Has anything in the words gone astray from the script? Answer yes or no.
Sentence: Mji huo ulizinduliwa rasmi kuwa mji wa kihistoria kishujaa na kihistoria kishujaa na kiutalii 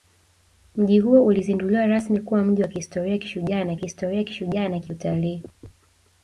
no